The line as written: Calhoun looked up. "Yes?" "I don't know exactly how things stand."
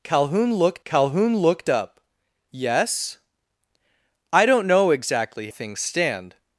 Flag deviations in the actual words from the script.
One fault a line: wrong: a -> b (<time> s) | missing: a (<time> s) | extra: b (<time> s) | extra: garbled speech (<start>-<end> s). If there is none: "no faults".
extra: calhoun looked (0.8 s)
missing: how (5.5 s)